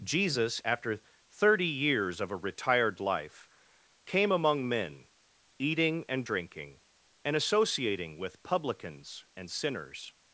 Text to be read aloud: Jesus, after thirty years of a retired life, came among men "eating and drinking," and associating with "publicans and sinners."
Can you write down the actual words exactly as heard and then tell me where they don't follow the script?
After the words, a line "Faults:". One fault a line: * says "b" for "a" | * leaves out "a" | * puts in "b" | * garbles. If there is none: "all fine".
Jesus, after thirty years of a retired life, came among men "eating and drinking," and associating with "publicans and sinners."
Faults:
all fine